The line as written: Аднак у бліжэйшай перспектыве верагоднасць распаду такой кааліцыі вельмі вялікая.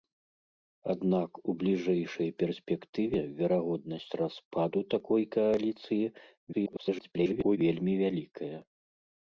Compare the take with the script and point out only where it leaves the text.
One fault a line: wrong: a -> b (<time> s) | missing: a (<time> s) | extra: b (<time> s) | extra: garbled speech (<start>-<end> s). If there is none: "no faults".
extra: garbled speech (6.5-7.6 s)